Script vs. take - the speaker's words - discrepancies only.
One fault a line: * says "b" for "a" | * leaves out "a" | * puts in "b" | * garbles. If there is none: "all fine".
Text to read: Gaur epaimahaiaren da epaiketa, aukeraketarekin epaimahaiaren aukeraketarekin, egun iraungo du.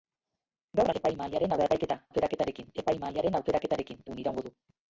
all fine